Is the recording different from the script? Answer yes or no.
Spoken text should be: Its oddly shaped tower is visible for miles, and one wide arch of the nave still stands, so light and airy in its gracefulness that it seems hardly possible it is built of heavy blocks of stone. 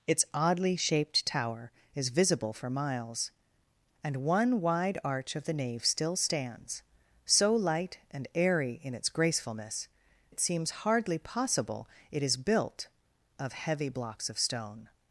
yes